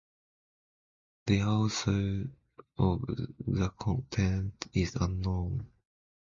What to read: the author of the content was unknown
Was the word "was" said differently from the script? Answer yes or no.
yes